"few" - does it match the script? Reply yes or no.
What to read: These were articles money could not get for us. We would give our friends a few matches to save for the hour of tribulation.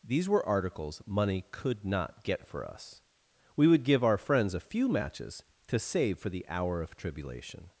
yes